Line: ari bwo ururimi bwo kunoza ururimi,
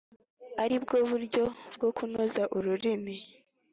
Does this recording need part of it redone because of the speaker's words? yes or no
yes